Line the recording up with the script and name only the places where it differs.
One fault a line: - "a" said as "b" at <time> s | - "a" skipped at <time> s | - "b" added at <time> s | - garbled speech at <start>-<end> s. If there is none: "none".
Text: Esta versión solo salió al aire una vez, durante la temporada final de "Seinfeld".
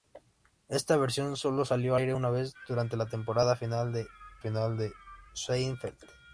- "al" skipped at 1.9 s
- "final de" added at 4.4 s